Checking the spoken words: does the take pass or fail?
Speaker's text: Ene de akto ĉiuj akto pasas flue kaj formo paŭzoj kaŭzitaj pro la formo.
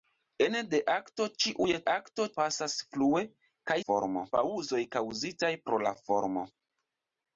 pass